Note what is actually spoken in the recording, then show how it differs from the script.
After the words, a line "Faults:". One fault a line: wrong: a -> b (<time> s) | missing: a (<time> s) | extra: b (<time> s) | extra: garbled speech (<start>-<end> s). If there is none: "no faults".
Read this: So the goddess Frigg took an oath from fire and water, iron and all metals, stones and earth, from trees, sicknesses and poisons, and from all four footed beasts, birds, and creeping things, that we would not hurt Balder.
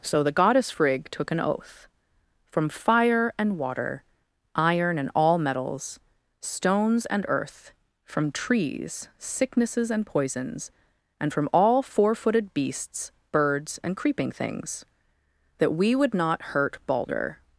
So the goddess Frigg took an oath from fire and water, iron and all metals, stones and earth, from trees, sicknesses and poisons, and from all four footed beasts, birds, and creeping things, that we would not hurt Balder.
Faults:
no faults